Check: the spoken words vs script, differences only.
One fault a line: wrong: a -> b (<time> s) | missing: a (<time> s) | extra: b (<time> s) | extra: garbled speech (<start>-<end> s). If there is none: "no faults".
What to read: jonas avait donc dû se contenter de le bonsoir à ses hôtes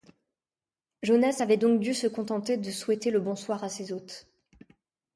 extra: souhaiter (2.7 s)